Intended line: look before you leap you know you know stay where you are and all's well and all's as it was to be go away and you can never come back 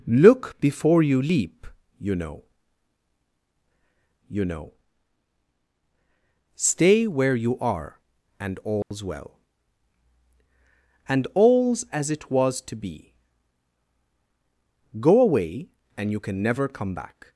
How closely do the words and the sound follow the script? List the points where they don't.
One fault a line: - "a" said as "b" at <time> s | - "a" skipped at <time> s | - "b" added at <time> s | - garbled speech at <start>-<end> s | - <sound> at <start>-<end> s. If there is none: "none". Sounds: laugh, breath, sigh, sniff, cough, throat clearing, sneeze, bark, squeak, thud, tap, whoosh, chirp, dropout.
- dropout at 8.8-8.9 s